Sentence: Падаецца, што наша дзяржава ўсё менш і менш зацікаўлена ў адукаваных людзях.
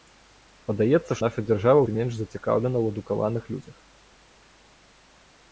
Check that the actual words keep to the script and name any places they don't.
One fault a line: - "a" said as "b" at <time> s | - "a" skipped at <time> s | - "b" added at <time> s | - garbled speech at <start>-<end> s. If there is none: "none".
- "што" skipped at 1.2 s
- "ўсё менш" skipped at 1.8 s